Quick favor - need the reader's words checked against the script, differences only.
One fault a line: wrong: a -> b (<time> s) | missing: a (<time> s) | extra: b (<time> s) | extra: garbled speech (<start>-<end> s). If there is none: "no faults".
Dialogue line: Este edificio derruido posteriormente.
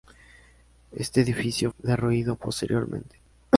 no faults